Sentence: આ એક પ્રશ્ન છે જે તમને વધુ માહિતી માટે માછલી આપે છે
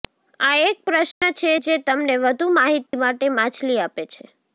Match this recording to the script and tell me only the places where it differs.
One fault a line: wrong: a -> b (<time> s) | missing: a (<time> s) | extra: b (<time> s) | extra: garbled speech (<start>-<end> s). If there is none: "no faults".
no faults